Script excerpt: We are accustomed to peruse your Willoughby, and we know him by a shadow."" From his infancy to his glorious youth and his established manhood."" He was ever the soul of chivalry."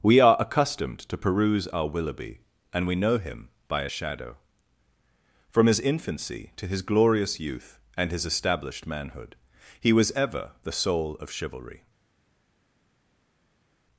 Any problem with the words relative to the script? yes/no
yes